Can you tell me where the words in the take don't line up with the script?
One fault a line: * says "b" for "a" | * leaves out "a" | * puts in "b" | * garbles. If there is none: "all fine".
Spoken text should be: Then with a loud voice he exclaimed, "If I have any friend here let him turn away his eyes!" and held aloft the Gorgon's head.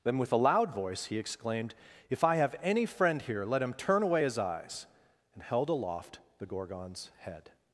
all fine